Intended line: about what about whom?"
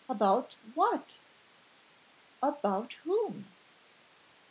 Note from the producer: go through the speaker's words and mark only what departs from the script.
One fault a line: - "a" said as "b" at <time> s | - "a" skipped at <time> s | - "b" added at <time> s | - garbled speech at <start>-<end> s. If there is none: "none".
none